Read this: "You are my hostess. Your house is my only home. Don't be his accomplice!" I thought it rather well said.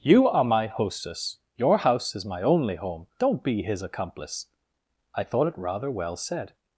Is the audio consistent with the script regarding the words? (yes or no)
yes